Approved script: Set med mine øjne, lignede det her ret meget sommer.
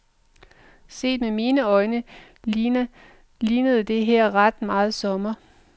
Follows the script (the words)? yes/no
yes